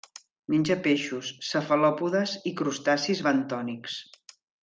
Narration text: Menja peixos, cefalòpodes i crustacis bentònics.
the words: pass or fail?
pass